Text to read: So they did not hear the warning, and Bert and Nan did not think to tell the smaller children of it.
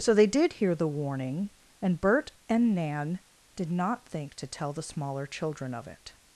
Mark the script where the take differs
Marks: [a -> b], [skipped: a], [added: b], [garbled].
So they did [skipped: not] hear the warning, and Bert and Nan did not think to tell the smaller children of it.